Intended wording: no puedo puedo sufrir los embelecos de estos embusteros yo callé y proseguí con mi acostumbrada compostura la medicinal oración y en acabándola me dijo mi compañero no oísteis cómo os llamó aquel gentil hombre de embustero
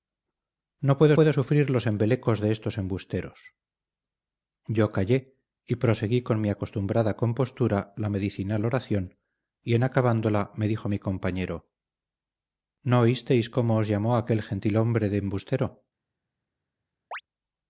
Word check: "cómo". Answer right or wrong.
right